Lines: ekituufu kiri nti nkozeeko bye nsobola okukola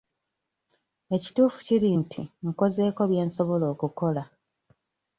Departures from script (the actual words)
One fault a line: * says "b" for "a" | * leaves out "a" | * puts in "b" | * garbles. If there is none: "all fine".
all fine